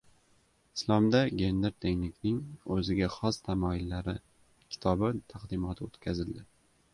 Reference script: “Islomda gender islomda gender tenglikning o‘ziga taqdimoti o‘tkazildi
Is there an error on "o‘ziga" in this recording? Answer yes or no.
yes